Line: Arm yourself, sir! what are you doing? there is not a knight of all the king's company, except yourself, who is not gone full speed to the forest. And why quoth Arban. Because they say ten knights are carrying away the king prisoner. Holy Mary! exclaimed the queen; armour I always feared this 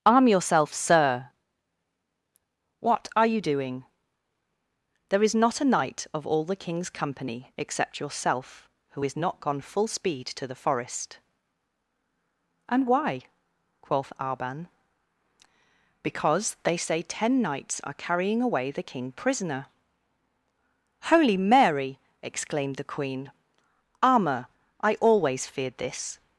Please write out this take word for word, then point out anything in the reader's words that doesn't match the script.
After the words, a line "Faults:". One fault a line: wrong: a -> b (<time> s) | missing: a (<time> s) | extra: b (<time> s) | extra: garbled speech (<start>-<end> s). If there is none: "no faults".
Arm yourself, sir! what are you doing? there is not a knight of all the king's company, except yourself, who is not gone full speed to the forest. And why quoth Arban. Because they say ten knights are carrying away the king prisoner. Holy Mary! exclaimed the queen; armour I always feared this
Faults:
no faults